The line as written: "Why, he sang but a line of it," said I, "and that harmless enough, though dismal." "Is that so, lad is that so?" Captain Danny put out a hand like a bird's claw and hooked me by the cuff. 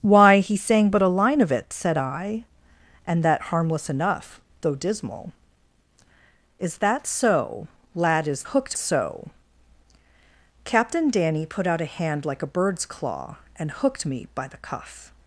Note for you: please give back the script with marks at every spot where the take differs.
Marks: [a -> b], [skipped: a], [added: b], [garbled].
"Why, he sang but a line of it," said I, "and that harmless enough, though dismal." "Is that so, lad is [that -> hooked] so?" Captain Danny put out a hand like a bird's claw and hooked me by the cuff.